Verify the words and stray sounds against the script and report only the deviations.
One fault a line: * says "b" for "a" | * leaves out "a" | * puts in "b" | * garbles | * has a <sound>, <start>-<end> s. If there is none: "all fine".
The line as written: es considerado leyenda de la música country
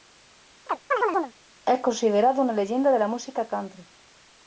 * has a chirp, 0.7-1.3 s
* puts in "una"